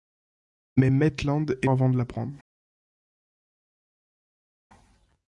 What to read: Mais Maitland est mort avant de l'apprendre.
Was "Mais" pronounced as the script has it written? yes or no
yes